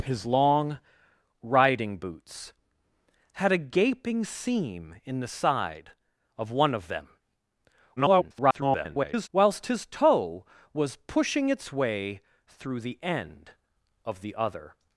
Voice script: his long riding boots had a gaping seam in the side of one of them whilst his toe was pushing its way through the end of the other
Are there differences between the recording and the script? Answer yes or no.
yes